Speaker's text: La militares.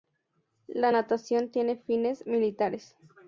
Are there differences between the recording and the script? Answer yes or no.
yes